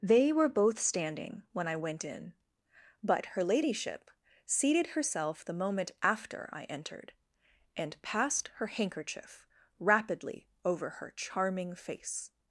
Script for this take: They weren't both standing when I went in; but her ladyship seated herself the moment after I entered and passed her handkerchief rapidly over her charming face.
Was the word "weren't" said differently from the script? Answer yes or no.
yes